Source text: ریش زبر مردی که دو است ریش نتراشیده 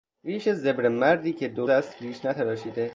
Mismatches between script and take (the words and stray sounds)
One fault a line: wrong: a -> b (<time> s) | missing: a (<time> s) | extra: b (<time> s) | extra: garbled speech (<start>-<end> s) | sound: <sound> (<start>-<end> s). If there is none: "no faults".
no faults